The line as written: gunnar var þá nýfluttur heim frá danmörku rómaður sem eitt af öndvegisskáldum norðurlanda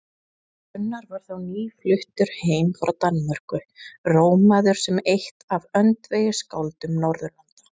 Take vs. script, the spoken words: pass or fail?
pass